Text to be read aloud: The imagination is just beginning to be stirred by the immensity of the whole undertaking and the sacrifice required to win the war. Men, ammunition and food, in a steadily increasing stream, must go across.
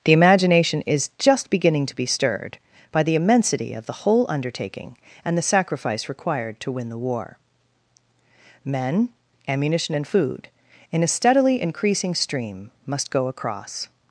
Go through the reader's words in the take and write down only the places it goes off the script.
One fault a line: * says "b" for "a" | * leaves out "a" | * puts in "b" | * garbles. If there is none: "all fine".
all fine